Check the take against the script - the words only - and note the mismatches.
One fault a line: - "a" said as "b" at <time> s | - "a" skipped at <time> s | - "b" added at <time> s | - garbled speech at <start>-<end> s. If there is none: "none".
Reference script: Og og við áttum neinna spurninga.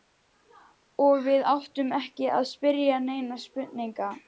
- "og" skipped at 1.2 s
- "ekki að spyrja" added at 2.0 s